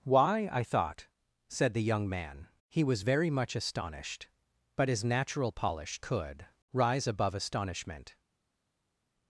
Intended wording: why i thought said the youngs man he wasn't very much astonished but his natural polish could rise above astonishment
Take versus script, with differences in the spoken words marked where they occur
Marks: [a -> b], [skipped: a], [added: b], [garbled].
why i thought said the [youngs -> young] man he [wasn't -> was] very much astonished but his natural polish could rise above astonishment